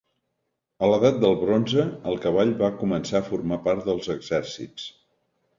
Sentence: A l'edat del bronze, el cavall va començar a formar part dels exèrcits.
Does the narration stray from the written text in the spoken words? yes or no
no